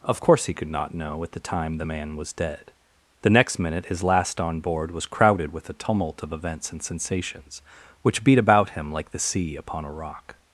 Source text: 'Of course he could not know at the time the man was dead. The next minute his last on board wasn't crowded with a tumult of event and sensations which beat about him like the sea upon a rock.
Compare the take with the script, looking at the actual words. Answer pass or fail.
fail